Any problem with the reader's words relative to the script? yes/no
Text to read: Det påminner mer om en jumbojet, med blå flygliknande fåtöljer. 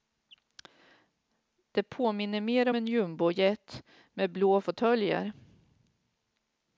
yes